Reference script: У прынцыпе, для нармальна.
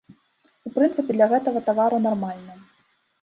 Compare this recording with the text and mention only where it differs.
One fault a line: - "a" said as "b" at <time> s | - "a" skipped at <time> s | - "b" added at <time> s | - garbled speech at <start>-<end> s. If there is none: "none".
- "гэтага тавару" added at 1.3 s